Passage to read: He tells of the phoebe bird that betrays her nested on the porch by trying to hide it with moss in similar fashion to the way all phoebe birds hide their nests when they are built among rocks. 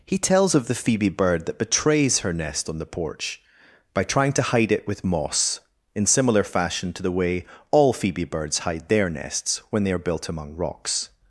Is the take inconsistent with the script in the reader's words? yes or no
yes